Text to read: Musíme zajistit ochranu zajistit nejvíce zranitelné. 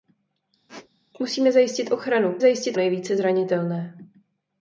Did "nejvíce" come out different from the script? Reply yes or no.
no